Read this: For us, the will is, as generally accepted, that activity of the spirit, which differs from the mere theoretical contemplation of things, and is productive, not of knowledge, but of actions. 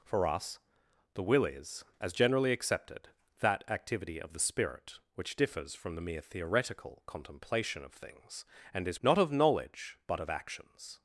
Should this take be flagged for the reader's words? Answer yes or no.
yes